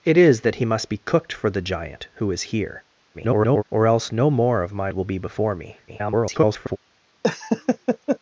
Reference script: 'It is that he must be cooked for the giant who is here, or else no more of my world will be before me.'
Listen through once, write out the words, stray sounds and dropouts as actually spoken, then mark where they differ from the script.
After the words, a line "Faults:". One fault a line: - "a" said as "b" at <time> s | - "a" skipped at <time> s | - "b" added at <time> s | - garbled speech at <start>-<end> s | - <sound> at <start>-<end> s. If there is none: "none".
'It is that he must be cooked for the giant who is here, [garbled] or else no more of my will be before me.' [garbled]
Faults:
- garbled speech at 3.1-3.6 s
- "world" skipped at 4.9 s
- garbled speech at 5.9-6.8 s
- laugh at 7.2-8.2 s